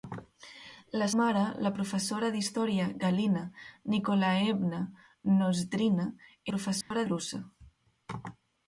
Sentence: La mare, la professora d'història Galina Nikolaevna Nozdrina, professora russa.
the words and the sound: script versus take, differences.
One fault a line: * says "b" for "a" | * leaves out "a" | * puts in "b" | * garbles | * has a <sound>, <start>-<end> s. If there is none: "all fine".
* has a dropout, 6.8-6.9 s